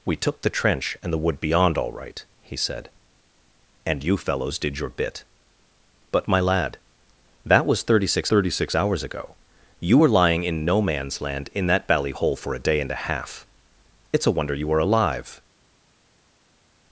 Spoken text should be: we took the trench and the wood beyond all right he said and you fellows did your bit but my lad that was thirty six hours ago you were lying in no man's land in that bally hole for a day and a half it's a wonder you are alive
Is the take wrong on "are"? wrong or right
right